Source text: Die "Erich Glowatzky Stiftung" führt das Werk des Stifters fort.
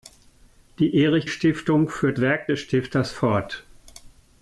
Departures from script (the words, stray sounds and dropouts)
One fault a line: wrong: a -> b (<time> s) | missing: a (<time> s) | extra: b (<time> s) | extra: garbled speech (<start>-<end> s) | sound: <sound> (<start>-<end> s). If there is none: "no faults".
missing: Glowatzky (1.3 s)
missing: das (2.2 s)